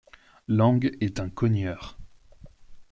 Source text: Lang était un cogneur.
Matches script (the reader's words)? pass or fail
fail